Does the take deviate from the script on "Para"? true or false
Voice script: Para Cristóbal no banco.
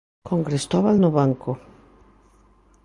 true